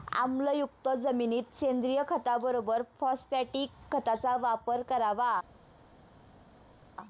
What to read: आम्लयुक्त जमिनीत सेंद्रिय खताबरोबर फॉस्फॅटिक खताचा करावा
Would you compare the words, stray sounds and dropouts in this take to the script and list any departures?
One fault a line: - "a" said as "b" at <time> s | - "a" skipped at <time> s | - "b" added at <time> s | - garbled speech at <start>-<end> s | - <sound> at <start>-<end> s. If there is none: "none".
- "वापर" added at 4.4 s